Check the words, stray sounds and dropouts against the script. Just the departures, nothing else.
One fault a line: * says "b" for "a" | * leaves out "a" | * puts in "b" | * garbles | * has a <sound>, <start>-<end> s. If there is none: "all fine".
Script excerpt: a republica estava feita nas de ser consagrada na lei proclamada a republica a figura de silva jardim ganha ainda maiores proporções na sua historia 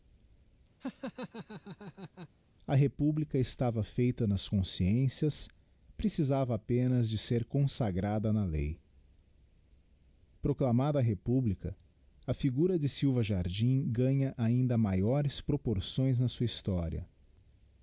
* has a laugh, 0.8-2.3 s
* puts in "consciências precisava apenas"